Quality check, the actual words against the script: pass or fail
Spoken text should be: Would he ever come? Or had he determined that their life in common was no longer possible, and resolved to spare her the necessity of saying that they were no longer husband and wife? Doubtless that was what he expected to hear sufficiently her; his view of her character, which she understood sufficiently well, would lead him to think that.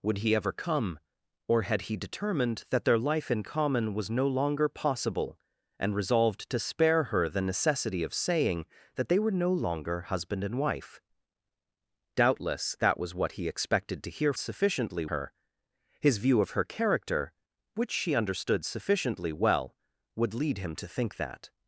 pass